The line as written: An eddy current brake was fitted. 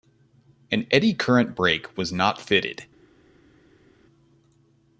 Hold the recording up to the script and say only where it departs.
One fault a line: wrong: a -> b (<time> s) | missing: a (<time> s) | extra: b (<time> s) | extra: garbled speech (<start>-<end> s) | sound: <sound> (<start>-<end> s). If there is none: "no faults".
extra: not (2.1 s)